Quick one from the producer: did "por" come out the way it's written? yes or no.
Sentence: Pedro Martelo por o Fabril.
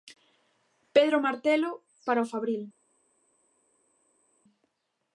no